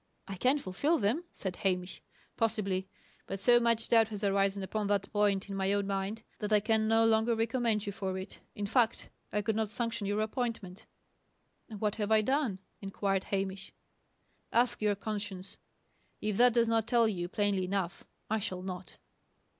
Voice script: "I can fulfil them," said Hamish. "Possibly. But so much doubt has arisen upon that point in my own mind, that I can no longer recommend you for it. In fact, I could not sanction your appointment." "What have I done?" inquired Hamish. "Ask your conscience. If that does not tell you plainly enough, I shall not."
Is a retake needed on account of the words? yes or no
no